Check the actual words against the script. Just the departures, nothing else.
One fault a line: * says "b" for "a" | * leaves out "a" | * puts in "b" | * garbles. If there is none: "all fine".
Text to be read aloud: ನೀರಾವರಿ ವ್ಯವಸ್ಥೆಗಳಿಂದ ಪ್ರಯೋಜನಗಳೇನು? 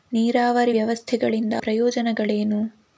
all fine